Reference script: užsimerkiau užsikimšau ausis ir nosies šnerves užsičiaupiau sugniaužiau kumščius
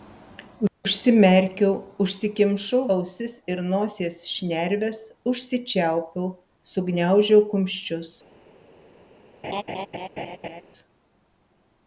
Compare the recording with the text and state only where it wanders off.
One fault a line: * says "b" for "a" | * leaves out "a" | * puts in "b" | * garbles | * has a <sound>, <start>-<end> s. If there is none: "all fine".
* has a laugh, 9.4-10.6 s